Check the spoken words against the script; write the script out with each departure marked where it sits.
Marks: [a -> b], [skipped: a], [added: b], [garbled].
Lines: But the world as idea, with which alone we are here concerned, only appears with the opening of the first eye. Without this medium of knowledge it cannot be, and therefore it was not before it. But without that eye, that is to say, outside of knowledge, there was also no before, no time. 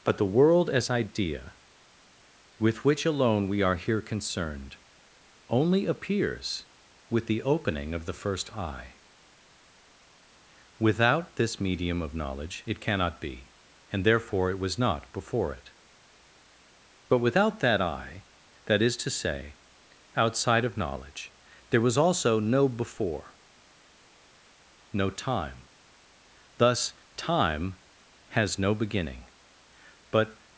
But the world as idea, with which alone we are here concerned, only appears with the opening of the first eye. Without this medium of knowledge it cannot be, and therefore it was not before it. But without that eye, that is to say, outside of knowledge, there was also no before, no time. [added: Thus time has no beginning but]